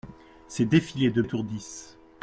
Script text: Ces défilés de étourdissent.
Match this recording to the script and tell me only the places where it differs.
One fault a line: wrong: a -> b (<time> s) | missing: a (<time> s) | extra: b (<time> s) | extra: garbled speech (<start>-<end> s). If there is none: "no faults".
no faults